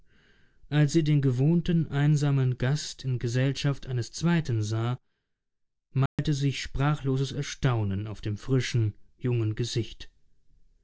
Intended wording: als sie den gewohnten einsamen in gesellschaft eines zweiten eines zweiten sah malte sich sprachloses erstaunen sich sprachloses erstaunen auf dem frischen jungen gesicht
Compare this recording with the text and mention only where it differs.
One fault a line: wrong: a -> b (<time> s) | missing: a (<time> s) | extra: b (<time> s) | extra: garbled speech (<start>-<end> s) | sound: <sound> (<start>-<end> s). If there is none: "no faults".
extra: gast (2.6 s)
missing: eines zweiten (4.6 s)
sound: dropout (6.1-6.2 s)
missing: sich sprachloses erstaunen (8.1 s)